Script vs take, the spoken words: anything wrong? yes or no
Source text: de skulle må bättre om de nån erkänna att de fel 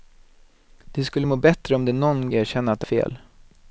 no